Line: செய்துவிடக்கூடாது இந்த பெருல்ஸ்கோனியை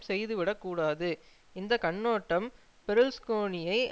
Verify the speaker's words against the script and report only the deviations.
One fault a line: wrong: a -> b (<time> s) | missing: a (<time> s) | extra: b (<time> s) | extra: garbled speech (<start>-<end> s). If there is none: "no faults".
extra: கண்ணோட்டம் (1.8 s)